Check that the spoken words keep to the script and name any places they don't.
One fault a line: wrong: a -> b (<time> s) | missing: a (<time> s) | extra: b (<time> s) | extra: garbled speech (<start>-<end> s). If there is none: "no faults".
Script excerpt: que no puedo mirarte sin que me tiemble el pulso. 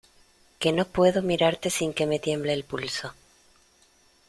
no faults